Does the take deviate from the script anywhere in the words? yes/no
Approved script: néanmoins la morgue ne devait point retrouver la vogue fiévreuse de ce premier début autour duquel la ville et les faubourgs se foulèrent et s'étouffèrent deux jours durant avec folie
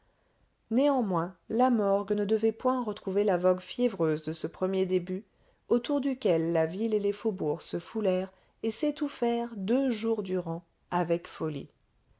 no